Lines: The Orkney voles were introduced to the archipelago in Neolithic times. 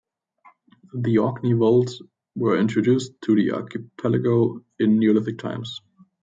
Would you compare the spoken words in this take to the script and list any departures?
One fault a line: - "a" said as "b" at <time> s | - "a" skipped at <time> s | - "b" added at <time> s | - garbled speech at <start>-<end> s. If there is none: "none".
none